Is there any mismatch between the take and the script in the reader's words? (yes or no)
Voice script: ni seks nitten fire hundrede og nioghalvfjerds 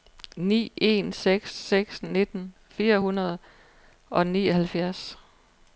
yes